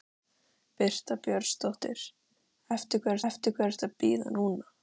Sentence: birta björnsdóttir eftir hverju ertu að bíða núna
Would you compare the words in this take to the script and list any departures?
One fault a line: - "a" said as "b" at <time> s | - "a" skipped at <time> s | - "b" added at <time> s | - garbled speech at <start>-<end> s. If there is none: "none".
- "eftir hverju" added at 3.3 s